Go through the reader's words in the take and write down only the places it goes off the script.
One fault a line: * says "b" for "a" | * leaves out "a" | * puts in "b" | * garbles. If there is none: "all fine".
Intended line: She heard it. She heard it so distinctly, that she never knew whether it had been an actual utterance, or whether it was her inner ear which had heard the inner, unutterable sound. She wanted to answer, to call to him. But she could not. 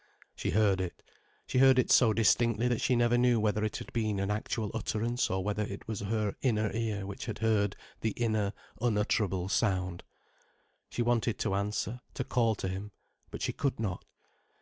all fine